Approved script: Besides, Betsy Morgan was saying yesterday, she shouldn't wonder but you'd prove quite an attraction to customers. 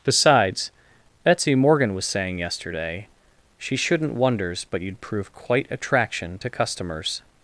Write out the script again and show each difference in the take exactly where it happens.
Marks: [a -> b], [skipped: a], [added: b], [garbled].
Besides, Betsy Morgan was saying yesterday, she shouldn't [wonder -> wonders] but you'd prove quite [skipped: an] attraction to customers.